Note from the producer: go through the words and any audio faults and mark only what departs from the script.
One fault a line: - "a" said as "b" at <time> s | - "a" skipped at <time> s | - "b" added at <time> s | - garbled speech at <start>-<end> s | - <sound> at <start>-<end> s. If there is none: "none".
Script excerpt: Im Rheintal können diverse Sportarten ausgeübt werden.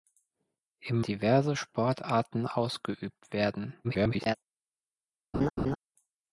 - "Rheintal können" skipped at 1.1 s
- garbled speech at 3.8-4.4 s
- laugh at 5.3-5.8 s